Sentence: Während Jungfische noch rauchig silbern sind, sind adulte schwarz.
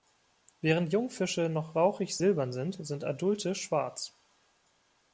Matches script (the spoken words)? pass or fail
pass